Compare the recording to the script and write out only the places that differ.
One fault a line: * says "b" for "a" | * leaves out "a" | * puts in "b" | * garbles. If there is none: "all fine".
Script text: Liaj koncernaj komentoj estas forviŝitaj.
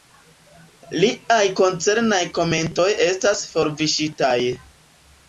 all fine